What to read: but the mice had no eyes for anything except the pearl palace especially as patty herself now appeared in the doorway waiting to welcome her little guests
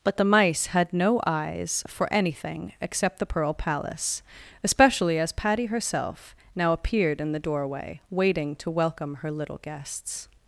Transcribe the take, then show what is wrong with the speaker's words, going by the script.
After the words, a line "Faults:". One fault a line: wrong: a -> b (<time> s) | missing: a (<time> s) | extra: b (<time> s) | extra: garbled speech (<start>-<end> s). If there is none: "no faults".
but the mice had no eyes for anything except the pearl palace especially as patty herself now appeared in the doorway waiting to welcome her little guests
Faults:
no faults